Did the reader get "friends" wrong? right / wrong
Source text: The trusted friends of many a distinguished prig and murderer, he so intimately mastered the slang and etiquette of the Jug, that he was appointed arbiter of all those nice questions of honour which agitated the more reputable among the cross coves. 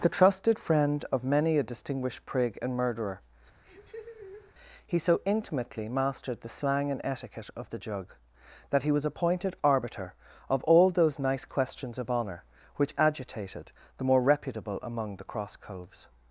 wrong